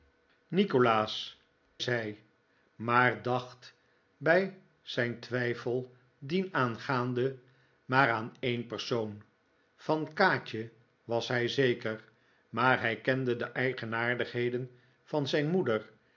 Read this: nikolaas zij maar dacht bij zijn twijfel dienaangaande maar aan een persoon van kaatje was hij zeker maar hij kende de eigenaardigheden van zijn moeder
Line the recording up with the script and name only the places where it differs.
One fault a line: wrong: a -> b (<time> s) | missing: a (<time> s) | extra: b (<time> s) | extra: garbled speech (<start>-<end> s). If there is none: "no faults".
no faults